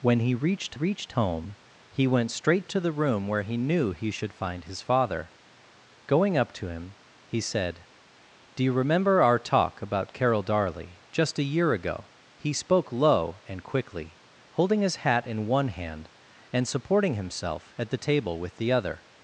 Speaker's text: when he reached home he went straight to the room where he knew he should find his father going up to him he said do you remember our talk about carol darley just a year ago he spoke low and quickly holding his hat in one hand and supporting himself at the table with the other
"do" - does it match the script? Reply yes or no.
yes